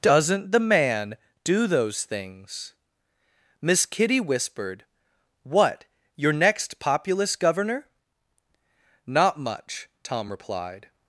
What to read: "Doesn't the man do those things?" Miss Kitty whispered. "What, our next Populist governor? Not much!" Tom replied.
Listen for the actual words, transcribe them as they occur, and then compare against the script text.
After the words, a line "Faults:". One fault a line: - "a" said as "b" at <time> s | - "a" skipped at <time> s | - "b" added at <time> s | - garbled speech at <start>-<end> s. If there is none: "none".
"Doesn't the man do those things?" Miss Kitty whispered. "What, your next Populist governor? Not much!" Tom replied.
Faults:
- "our" said as "your" at 6.2 s